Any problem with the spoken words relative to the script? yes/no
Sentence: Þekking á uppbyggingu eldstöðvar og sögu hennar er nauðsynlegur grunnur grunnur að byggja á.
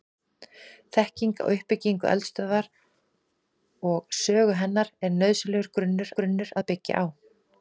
no